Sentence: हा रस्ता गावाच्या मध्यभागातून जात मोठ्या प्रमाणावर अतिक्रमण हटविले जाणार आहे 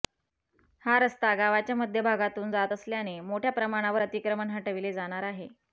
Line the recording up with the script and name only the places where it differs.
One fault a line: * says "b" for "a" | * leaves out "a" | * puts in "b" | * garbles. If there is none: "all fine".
* puts in "असल्याने"